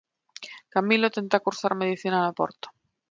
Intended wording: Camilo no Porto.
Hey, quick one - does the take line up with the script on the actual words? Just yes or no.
no